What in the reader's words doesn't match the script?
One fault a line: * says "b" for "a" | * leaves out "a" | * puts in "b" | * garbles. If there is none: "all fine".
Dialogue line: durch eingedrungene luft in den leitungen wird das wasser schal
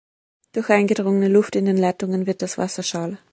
all fine